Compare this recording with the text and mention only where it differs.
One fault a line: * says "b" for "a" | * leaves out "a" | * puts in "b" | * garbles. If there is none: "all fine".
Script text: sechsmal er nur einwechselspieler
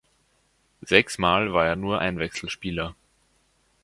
* puts in "war"